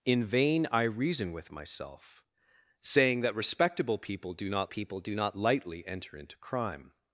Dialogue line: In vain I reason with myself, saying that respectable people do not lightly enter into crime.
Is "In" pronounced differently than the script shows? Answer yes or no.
no